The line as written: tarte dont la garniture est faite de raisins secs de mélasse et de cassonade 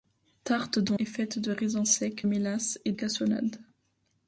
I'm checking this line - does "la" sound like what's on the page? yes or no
no